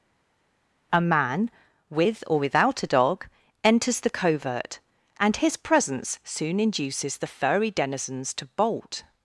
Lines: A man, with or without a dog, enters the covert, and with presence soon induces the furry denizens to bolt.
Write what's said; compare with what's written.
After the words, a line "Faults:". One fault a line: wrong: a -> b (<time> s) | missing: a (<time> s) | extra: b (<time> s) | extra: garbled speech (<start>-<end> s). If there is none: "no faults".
A man, with or without a dog, enters the covert, and his presence soon induces the furry denizens to bolt.
Faults:
wrong: with -> his (5.4 s)